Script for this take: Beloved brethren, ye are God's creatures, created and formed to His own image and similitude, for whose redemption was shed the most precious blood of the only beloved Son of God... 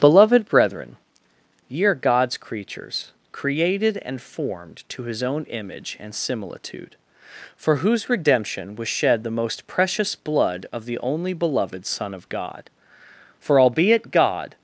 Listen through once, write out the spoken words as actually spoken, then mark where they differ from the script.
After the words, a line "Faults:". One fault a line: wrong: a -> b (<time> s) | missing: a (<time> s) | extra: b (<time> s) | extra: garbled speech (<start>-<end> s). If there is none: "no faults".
Beloved brethren, ye are God's creatures, created and formed to His own image and similitude, for whose redemption was shed the most precious blood of the only beloved Son of God... For albeit God
Faults:
extra: For albeit God (13.4 s)